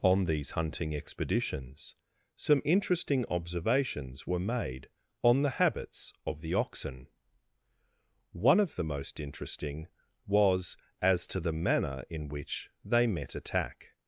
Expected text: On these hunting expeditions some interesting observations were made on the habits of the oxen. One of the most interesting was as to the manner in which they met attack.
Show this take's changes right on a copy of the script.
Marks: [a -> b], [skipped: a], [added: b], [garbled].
On these hunting expeditions some interesting observations were made on the habits of the oxen. One of the most interesting was as to the manner in which they met attack.